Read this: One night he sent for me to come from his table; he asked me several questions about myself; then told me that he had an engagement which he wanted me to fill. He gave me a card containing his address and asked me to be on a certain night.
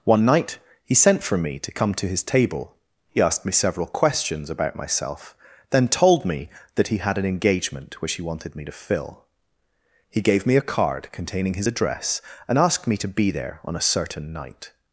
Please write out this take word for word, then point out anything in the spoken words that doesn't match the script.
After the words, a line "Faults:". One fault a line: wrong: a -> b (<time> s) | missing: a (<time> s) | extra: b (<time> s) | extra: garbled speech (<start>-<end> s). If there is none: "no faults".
One night he sent for me to come to his table; he asked me several questions about myself; then told me that he had an engagement which he wanted me to fill. He gave me a card containing his address and asked me to be there on a certain night.
Faults:
wrong: from -> to (1.9 s)
extra: there (13.3 s)